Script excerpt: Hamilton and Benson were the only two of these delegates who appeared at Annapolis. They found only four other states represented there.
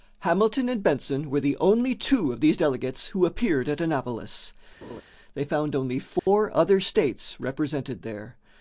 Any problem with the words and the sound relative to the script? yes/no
yes